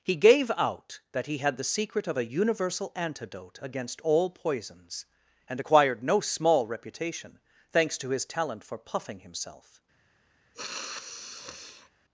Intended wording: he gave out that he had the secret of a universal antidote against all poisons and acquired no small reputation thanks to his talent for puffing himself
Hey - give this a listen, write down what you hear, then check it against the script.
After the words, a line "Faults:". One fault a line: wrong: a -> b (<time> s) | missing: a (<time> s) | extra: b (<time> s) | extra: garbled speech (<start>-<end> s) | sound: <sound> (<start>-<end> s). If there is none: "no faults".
he gave out that he had the secret of a universal antidote against all poisons and acquired no small reputation thanks to his talent for puffing himself
Faults:
sound: sniff (10.5-11.9 s)